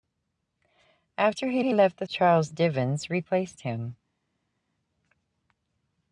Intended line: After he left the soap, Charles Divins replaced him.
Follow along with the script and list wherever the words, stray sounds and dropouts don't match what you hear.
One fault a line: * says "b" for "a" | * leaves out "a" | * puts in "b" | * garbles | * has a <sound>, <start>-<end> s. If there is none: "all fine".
* puts in "he"
* leaves out "soap"